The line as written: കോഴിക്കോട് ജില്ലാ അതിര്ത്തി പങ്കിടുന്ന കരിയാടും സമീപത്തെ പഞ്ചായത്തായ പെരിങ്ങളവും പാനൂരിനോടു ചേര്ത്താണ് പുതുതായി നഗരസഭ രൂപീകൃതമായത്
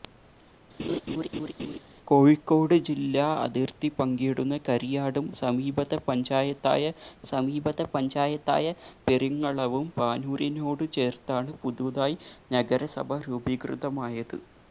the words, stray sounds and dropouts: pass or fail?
fail